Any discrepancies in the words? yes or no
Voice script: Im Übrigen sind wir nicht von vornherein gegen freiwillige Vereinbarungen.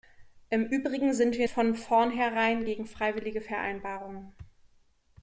yes